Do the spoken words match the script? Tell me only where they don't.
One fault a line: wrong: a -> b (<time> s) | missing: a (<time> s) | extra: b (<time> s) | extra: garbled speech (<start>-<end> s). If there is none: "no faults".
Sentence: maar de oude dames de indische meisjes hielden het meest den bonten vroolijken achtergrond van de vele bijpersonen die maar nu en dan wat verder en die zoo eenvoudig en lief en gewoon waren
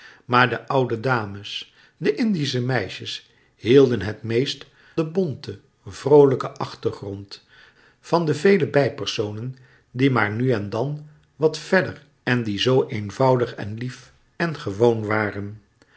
no faults